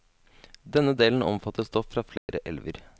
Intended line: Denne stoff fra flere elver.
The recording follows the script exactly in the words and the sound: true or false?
false